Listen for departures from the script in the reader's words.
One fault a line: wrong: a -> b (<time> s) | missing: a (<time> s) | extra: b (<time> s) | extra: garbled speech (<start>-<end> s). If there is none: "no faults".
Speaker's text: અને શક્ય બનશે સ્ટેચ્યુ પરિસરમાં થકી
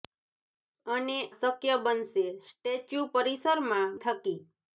no faults